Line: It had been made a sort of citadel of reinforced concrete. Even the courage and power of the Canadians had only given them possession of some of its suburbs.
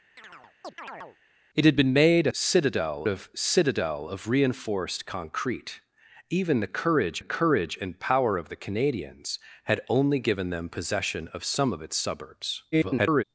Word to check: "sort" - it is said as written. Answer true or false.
false